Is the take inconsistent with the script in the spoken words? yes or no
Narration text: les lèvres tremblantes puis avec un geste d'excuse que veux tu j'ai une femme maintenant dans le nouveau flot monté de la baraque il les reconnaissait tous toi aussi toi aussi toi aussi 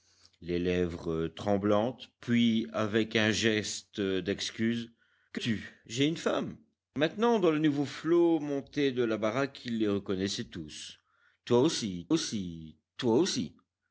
yes